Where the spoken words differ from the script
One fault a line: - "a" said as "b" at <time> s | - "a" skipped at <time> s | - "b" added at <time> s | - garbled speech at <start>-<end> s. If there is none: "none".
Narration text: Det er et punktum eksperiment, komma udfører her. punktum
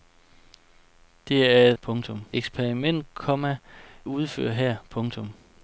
none